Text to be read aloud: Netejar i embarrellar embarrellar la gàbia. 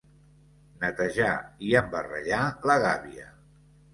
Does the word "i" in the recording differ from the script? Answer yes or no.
no